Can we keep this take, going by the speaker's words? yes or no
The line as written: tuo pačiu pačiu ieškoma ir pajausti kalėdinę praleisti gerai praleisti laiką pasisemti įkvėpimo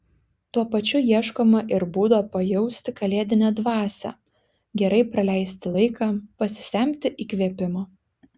no